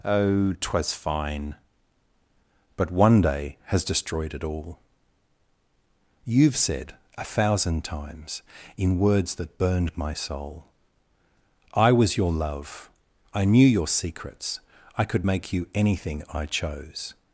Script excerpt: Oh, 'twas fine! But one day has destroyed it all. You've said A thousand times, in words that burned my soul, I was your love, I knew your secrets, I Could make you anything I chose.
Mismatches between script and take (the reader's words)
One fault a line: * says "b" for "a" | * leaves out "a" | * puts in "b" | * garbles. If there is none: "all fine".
all fine